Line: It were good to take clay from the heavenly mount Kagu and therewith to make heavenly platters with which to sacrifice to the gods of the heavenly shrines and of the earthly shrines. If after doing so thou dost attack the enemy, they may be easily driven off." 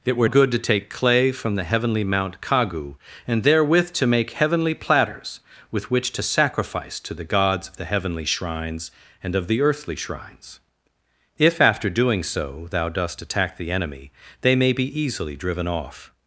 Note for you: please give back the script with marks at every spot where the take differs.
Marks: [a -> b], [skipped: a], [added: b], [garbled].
It were good to take clay from the heavenly mount Kagu and therewith to make heavenly platters with which to sacrifice to the gods of the heavenly shrines and of the earthly shrines. If after doing so thou dost attack the enemy, they may be easily driven off."